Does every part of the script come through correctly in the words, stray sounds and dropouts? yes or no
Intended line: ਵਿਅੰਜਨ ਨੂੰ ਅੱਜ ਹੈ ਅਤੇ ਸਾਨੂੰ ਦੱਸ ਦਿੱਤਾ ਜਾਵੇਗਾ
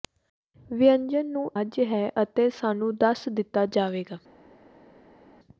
yes